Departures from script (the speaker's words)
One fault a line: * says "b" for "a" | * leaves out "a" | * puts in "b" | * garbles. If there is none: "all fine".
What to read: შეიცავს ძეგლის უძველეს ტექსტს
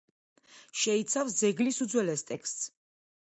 all fine